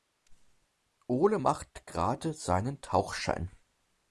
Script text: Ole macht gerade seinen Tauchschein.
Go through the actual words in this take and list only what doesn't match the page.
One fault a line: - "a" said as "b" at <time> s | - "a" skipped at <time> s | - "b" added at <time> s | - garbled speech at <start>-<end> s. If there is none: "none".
none